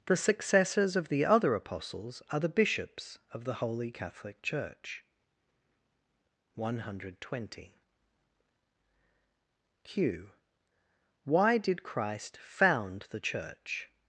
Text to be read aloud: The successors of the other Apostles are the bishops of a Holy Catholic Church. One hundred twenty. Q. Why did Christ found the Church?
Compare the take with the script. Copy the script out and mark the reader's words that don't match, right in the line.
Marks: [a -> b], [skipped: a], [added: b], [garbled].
The successors of the other Apostles are the bishops of [a -> the] Holy Catholic Church. One hundred twenty. Q. Why did Christ found the Church?